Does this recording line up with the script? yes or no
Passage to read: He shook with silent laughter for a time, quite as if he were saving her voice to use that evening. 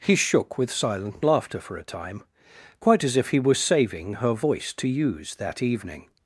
yes